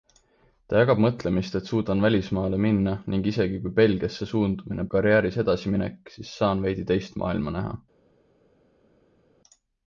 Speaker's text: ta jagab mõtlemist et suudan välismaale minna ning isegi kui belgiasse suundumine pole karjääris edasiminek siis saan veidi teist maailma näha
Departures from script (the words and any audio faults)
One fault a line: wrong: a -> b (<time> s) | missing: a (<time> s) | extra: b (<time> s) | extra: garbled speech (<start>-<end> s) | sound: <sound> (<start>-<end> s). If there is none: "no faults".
missing: pole (4.9 s)